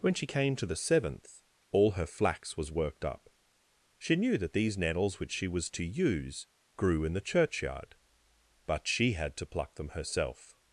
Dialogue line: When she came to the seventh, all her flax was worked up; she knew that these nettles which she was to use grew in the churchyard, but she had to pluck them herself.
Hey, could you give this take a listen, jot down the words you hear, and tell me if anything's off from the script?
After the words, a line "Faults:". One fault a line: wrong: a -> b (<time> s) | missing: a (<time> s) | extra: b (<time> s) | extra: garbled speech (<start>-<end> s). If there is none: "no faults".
When she came to the seventh, all her flax was worked up; she knew that these nettles which she was to use grew in the churchyard, but she had to pluck them herself.
Faults:
no faults